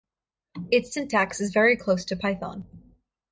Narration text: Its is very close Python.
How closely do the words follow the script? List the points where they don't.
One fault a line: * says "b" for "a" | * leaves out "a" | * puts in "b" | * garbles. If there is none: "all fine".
* puts in "syntax"
* puts in "to"